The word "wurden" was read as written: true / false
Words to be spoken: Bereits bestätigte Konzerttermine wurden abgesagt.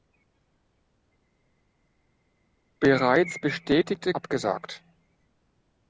false